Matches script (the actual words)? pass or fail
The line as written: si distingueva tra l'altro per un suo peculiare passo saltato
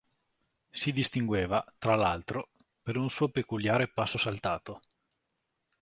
pass